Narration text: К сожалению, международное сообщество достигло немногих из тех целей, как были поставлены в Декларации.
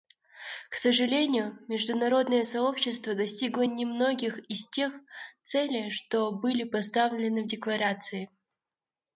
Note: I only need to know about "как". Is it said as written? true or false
false